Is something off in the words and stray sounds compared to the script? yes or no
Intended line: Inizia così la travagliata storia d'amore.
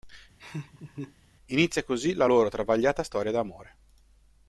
yes